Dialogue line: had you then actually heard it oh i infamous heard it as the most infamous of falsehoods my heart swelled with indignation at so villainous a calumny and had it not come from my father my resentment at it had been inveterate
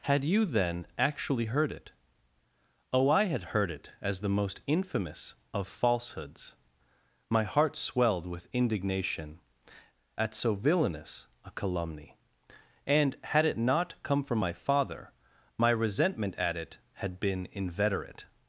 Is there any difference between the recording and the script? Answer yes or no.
yes